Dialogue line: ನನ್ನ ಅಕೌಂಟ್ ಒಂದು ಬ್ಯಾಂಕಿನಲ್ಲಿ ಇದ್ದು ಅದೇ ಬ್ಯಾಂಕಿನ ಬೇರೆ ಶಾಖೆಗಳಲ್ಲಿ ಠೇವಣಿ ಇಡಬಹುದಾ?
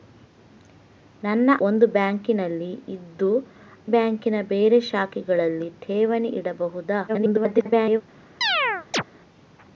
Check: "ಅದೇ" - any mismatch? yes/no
yes